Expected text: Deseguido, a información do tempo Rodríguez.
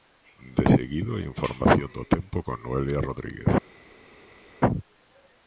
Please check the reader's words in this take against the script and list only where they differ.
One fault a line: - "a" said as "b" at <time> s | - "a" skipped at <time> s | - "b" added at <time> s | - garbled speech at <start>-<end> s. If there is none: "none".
- "con Noelia" added at 2.4 s